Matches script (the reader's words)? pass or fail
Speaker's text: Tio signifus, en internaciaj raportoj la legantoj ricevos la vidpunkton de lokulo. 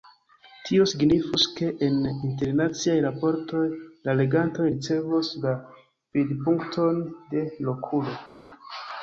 fail